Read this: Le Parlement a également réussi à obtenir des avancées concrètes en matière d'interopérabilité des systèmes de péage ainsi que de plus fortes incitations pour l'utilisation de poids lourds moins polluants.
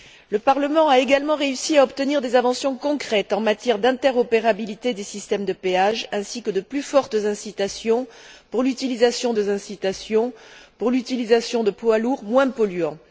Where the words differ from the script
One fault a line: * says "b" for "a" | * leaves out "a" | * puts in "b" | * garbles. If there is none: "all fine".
* puts in "incitations pour l'utilisation"